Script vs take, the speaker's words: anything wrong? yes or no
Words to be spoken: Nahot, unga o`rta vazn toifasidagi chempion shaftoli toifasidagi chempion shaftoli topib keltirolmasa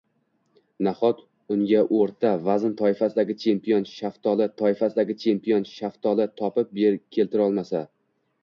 no